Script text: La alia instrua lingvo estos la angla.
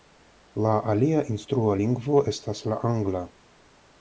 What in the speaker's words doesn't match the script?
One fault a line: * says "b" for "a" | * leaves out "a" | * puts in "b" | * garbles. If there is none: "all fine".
* says "estas" for "estos"